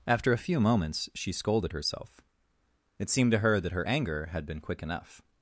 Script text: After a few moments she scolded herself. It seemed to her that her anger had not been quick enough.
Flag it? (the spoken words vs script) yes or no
yes